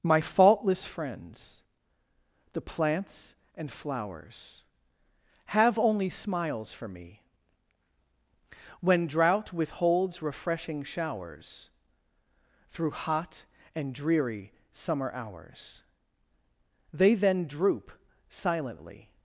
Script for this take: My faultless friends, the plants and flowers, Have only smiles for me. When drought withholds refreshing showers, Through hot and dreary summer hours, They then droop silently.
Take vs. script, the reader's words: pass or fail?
pass